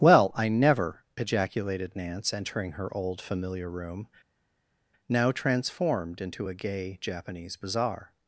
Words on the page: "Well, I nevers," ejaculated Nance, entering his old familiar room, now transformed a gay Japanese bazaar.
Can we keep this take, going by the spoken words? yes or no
no